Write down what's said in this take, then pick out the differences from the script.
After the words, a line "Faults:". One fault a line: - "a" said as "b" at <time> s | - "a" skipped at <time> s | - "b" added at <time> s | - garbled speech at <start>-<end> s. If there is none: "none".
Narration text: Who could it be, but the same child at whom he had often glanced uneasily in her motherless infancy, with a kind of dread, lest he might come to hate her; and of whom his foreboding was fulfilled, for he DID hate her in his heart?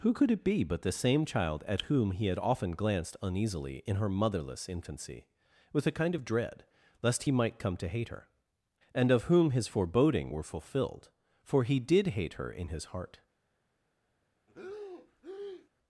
Who could it be, but the same child at whom he had often glanced uneasily in her motherless infancy, with a kind of dread, lest he might come to hate her; and of whom his foreboding were fulfilled, for he DID hate her in his heart?
Faults:
- "was" said as "were" at 10.3 s